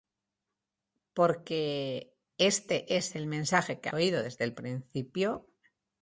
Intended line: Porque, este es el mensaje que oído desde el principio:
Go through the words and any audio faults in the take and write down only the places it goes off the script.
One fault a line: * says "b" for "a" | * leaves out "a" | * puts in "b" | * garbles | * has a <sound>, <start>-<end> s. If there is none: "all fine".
all fine